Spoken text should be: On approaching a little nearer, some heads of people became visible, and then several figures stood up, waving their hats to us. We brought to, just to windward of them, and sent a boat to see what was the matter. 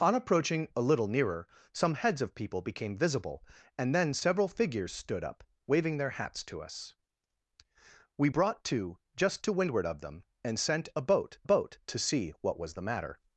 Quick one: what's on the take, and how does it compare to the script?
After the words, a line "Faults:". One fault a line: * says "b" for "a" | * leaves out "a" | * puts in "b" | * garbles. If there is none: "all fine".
On approaching a little nearer, some heads of people became visible, and then several figures stood up, waving their hats to us. We brought to, just to windward of them, and sent a boat boat to see what was the matter.
Faults:
* puts in "boat"